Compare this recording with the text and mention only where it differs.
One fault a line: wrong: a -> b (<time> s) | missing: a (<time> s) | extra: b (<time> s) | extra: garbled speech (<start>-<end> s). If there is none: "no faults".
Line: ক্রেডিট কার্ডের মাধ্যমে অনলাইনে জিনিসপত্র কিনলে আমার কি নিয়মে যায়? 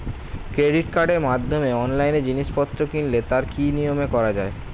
wrong: আমার -> তার (3.3 s)
extra: করা (4.1 s)